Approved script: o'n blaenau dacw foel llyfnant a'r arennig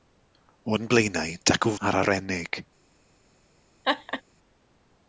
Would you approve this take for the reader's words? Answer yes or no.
no